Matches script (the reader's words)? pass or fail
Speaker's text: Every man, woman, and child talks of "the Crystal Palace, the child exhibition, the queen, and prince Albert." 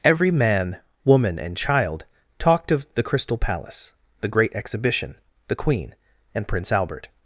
fail